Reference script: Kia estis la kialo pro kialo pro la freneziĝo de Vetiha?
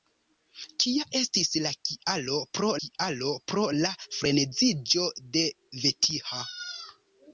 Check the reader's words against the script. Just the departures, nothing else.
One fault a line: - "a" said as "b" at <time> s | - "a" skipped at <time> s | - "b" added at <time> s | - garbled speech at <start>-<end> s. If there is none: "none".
none